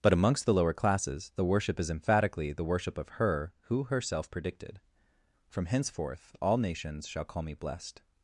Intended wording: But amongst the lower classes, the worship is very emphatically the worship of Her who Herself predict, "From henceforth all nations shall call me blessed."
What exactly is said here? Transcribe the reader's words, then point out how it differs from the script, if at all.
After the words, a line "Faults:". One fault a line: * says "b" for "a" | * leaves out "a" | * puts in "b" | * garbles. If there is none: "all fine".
But amongst the lower classes, the worship is emphatically the worship of Her who Herself predicted, "From henceforth all nations shall call me blessed."
Faults:
* leaves out "very"
* says "predicted" for "predict"